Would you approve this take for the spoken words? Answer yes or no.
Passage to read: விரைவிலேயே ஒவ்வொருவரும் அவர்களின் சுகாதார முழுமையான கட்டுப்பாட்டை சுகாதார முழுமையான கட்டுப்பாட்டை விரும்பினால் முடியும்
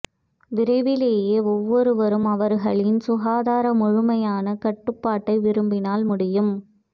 no